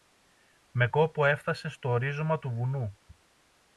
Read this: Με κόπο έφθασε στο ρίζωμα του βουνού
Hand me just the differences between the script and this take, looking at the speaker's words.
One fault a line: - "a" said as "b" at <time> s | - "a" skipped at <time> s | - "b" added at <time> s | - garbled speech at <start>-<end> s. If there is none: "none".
none